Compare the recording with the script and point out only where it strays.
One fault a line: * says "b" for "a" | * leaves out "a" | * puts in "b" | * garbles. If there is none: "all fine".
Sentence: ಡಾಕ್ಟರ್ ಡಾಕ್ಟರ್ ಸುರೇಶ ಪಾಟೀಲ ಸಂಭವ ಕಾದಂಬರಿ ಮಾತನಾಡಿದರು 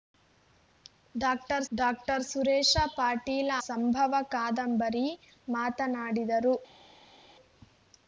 all fine